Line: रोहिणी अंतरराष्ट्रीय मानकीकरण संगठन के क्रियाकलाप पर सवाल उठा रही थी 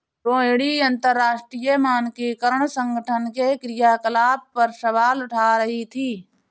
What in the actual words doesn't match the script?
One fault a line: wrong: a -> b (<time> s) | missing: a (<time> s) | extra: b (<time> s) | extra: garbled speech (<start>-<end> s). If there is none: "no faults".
no faults